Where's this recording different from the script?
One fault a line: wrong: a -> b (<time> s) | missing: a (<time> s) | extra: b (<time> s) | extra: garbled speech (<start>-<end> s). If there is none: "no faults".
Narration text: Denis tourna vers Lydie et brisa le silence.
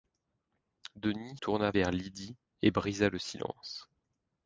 no faults